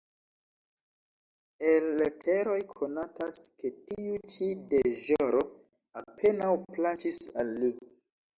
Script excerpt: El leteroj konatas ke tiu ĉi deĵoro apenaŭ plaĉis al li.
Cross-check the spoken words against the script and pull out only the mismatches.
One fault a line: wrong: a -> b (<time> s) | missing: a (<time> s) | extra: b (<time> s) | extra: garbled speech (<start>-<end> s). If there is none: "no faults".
no faults